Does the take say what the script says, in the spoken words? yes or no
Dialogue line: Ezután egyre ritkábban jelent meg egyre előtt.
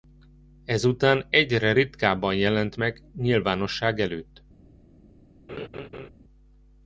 no